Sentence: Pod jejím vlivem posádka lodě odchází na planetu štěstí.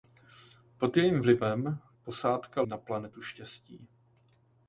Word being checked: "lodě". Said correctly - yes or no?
no